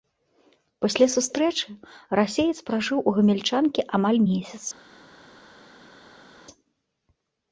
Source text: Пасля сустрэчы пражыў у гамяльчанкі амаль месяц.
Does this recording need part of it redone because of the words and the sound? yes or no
yes